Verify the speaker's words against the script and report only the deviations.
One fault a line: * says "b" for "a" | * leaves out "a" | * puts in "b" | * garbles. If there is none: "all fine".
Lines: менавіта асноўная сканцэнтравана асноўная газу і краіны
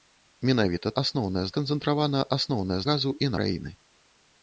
all fine